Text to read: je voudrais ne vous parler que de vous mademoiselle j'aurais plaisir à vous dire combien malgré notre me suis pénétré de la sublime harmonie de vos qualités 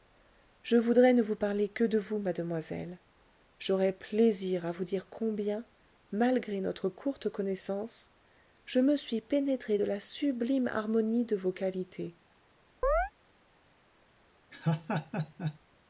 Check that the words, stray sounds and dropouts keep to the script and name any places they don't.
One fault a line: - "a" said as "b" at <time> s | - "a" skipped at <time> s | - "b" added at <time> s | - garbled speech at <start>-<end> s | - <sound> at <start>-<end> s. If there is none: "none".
- "courte connaissance je" added at 6.9 s
- chirp at 12.8-13.1 s
- laugh at 14.5-15.6 s